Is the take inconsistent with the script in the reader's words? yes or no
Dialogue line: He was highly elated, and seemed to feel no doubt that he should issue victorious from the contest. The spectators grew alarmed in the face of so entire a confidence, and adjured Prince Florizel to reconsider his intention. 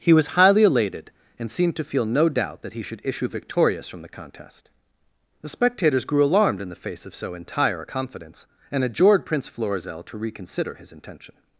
no